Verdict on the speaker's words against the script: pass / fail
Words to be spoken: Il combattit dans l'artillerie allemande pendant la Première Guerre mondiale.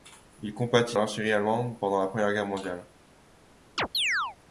fail